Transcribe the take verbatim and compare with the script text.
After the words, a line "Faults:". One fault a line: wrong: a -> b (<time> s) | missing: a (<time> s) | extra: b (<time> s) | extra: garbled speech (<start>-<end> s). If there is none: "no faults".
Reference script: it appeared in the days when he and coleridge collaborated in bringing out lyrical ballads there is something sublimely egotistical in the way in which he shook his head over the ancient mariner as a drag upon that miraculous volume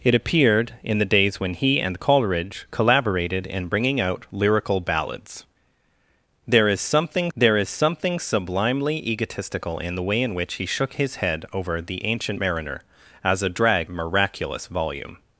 it appeared in the days when he and coleridge collaborated in bringing out lyrical ballads there is something there is something sublimely egotistical in the way in which he shook his head over the ancient mariner as a drag miraculous volume
Faults:
extra: there is something (7.4 s)
missing: upon that (13.9 s)